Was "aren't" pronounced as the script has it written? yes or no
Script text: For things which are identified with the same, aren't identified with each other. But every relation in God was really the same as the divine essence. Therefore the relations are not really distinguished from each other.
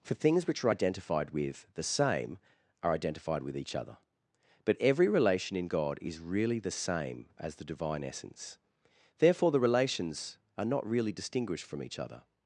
no